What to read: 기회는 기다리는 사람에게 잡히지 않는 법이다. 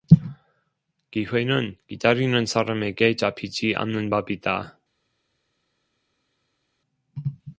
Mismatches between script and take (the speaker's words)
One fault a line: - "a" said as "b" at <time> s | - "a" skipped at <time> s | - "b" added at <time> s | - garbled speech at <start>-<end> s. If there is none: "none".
none